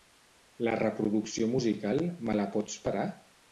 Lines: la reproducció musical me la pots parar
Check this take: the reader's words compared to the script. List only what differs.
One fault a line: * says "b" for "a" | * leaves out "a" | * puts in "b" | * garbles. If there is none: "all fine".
all fine